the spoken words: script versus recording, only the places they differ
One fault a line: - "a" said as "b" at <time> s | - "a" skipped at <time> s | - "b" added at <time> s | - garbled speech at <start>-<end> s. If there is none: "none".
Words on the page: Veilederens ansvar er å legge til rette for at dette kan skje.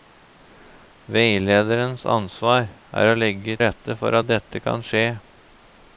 - "til" skipped at 3.6 s